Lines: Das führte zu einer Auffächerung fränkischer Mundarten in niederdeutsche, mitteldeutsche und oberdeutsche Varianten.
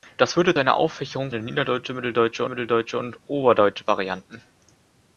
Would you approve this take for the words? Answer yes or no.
no